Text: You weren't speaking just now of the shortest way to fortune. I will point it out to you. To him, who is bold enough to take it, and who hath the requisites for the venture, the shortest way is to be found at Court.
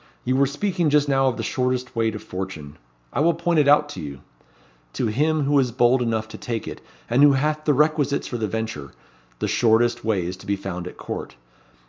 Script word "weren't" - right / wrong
wrong